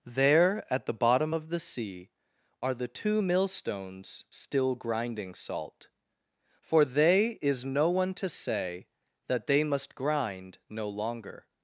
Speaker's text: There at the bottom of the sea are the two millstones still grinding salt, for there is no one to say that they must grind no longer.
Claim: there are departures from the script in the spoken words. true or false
true